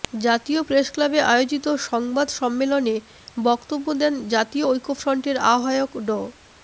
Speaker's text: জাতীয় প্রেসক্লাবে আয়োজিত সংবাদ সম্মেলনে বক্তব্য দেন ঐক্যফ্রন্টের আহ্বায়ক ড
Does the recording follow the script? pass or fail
fail